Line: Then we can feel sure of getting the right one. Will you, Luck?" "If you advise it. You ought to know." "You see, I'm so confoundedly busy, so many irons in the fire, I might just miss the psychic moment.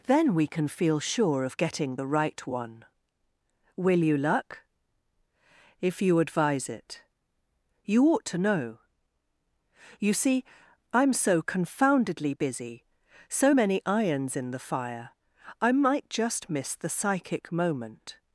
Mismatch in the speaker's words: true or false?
false